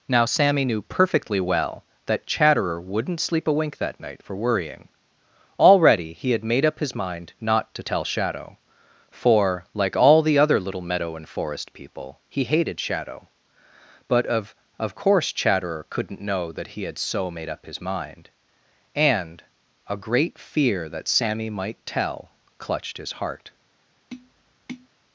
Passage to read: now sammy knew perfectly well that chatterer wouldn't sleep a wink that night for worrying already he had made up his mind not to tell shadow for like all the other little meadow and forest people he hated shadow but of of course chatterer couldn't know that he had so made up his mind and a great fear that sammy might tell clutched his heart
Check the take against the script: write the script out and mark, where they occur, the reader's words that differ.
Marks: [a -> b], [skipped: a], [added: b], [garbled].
now sammy knew perfectly well that chatterer wouldn't sleep a wink that night for worrying already he had made up his mind not to tell shadow for like all the other little meadow and forest people he hated shadow but of of course chatterer couldn't know that he had so made up his mind and a great fear that sammy might tell clutched his heart